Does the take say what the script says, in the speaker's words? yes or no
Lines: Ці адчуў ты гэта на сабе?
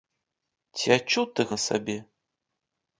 no